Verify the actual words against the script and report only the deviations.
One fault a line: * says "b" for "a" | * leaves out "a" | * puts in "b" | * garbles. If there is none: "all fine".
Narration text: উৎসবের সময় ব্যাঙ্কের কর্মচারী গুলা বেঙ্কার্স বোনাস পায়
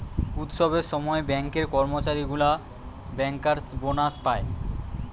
all fine